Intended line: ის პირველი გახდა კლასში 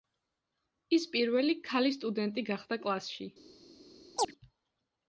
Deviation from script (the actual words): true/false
true